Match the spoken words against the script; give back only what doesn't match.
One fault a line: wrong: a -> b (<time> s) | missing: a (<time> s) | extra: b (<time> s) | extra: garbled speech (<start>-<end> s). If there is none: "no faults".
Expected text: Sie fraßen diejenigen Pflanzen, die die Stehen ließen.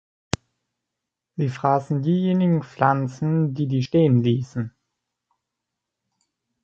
no faults